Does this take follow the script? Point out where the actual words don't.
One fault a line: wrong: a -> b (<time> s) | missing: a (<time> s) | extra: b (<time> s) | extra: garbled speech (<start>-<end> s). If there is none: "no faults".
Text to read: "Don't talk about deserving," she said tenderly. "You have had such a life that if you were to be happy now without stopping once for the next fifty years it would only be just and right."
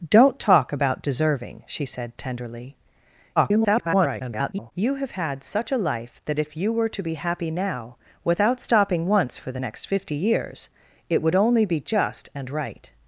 extra: garbled speech (3.4-4.7 s)